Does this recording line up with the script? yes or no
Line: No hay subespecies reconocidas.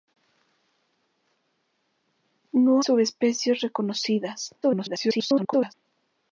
no